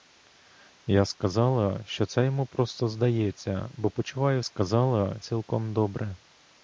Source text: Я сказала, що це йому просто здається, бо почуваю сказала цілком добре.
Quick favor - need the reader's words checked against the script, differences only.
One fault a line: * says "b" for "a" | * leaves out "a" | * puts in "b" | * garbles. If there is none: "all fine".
all fine